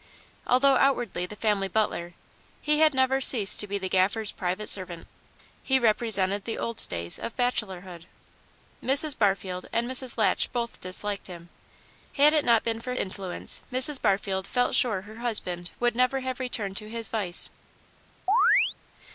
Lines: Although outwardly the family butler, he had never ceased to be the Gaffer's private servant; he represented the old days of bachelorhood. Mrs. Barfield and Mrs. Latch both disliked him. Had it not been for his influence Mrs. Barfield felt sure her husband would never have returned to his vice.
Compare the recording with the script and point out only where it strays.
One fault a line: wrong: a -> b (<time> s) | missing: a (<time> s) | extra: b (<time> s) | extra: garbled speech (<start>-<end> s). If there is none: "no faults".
missing: his (12.9 s)